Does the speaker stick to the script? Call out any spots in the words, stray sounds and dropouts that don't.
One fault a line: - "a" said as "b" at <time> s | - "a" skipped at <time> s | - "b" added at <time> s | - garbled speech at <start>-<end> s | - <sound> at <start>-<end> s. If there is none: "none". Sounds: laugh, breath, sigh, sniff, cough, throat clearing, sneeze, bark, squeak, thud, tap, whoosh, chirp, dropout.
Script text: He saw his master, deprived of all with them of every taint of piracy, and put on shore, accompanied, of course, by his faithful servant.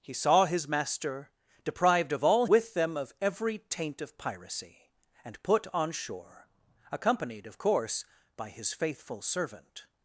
none